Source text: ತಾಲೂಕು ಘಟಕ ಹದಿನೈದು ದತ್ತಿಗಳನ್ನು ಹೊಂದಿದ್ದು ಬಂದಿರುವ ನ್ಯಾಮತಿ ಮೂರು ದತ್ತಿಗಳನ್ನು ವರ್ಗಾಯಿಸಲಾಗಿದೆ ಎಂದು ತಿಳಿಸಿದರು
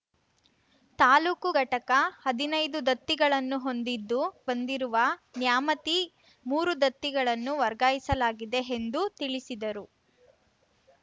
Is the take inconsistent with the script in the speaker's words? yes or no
no